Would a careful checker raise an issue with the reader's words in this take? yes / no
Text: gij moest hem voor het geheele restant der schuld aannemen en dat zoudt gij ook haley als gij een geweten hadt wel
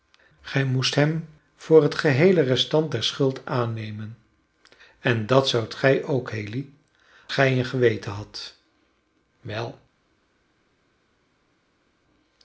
yes